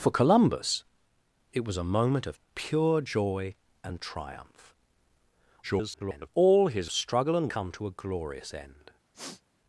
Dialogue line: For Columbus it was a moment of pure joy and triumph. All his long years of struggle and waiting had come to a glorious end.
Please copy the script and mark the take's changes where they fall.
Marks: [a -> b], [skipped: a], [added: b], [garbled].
For Columbus it was a moment of pure joy and triumph. [garbled] All his [skipped: long years of] struggle and [skipped: waiting had] come to a glorious end.